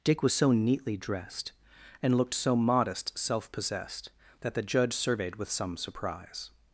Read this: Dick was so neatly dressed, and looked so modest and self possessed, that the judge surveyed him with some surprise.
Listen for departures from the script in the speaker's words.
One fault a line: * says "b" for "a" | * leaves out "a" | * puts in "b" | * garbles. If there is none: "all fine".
* leaves out "and"
* leaves out "him"